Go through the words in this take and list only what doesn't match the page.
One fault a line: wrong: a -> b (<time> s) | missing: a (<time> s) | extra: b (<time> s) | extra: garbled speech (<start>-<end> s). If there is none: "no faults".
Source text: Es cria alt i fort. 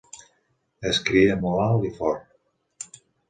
extra: molt (1.5 s)